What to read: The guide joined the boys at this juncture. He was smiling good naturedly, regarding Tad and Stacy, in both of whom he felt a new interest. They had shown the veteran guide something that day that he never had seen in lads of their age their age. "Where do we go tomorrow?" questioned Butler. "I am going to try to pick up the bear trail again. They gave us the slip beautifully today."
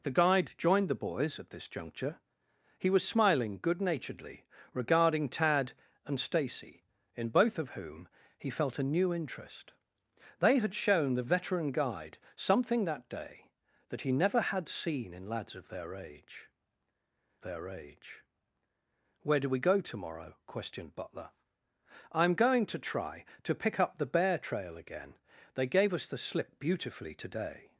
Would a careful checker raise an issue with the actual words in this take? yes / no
no